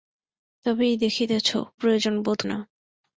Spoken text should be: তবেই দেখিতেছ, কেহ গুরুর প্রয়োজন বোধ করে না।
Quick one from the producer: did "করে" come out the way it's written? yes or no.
no